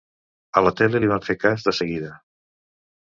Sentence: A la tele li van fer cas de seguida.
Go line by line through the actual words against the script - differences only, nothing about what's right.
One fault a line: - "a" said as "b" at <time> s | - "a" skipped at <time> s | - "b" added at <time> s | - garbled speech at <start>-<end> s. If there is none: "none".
none